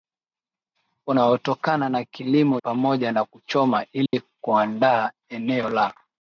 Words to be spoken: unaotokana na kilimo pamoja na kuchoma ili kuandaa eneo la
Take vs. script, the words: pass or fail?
pass